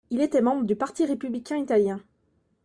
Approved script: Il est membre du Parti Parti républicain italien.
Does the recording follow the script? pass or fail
fail